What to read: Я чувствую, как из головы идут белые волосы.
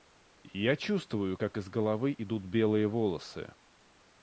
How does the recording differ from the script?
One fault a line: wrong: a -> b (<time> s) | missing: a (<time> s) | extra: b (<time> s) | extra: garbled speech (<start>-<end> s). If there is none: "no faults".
no faults